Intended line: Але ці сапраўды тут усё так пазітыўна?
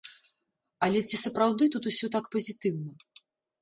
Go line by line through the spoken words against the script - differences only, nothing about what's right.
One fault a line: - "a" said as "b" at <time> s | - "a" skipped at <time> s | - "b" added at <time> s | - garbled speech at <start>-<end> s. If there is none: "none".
none